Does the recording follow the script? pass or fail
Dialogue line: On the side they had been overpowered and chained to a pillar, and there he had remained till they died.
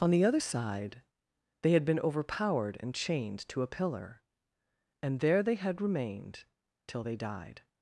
fail